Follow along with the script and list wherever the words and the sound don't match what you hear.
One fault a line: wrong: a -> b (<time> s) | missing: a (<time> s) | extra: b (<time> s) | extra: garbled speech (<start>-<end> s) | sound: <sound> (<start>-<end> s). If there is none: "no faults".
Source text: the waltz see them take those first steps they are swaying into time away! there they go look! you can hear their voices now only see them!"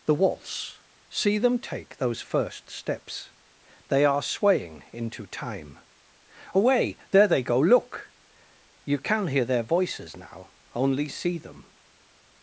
no faults